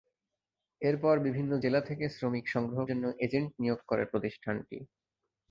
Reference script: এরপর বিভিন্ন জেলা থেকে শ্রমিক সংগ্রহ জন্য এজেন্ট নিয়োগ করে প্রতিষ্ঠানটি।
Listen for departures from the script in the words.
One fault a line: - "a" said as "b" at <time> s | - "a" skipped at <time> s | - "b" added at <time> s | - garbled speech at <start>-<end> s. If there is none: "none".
none